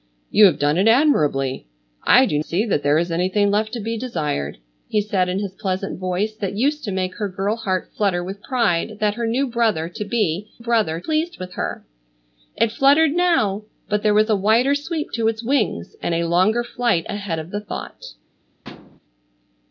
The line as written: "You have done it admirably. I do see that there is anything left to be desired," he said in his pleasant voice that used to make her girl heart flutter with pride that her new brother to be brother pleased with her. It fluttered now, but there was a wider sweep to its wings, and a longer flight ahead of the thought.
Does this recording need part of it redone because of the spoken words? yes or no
no